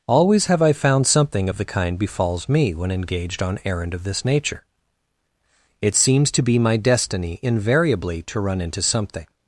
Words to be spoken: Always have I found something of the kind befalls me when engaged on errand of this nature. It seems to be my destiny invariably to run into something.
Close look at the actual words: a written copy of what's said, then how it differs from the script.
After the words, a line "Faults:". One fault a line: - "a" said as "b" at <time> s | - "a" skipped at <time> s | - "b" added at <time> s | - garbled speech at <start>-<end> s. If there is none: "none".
Always have I found something of the kind befalls me when engaged on errand of this nature. It seems to be my destiny invariably to run into something.
Faults:
none